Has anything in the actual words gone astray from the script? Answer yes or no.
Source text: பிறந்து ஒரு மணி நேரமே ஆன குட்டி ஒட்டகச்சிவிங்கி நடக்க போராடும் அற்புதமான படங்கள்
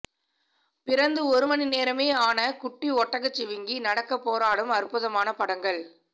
no